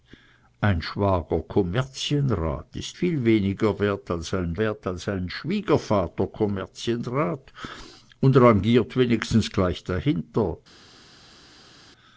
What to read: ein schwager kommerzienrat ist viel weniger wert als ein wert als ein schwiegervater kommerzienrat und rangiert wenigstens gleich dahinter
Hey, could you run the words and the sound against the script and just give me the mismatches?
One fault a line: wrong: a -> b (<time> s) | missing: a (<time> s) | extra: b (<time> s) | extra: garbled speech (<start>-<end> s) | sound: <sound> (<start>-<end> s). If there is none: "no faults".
no faults